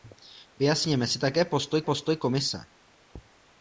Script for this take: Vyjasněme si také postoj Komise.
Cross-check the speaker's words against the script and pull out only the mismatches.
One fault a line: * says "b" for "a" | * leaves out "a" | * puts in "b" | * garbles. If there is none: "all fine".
* puts in "postoj"